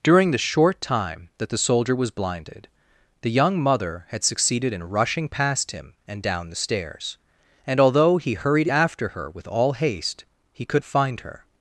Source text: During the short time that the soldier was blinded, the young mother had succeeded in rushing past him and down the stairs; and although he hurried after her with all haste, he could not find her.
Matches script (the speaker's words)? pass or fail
fail